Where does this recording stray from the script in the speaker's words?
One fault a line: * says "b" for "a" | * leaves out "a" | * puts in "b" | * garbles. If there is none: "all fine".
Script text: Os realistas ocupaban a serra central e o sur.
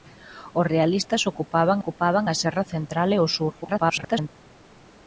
* puts in "ocupaban"
* garbles